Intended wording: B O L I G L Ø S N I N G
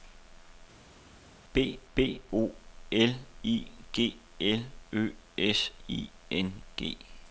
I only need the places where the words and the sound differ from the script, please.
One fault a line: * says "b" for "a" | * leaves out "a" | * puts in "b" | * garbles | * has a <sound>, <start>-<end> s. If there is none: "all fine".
* puts in "b"
* leaves out "N"